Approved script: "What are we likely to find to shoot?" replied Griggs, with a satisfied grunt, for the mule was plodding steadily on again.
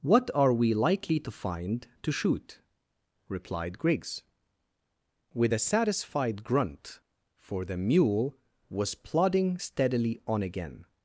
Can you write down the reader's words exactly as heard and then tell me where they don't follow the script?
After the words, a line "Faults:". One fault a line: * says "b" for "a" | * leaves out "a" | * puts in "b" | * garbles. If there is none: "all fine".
"What are we likely to find to shoot?" replied Griggs, with a satisfied grunt, for the mule was plodding steadily on again.
Faults:
all fine